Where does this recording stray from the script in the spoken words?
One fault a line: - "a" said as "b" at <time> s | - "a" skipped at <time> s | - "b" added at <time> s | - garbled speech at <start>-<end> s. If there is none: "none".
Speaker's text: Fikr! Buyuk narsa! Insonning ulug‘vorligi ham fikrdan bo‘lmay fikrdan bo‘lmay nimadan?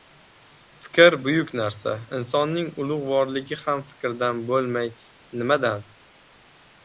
- "fikrdan bo‘lmay" skipped at 4.9 s